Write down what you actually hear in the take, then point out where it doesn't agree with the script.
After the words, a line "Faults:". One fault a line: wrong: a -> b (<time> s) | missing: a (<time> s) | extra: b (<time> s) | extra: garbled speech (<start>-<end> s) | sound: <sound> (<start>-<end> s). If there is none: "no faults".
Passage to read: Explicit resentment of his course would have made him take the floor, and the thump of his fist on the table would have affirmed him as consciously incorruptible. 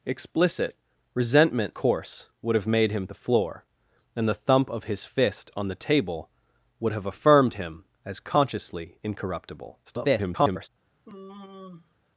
Explicit resentment course would have made him the floor, and the thump of his fist on the table would have affirmed him as consciously incorruptible. [garbled]
Faults:
missing: of his (1.7 s)
missing: take (3.1 s)
extra: garbled speech (9.8-10.7 s)
sound: sigh (11.0-11.9 s)